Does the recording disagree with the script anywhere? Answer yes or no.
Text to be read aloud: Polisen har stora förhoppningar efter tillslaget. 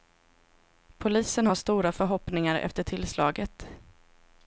no